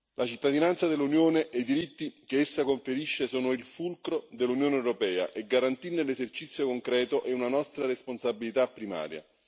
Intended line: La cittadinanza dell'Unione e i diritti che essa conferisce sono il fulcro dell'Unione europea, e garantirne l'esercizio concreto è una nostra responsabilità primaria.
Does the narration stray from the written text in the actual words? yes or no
no